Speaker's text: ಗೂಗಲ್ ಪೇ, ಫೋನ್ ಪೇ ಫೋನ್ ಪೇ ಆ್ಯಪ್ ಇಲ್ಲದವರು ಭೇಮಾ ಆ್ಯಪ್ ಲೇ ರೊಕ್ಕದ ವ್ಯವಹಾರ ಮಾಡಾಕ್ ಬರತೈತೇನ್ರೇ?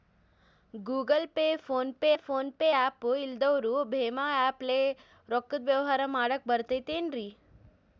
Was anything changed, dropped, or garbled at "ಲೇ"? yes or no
no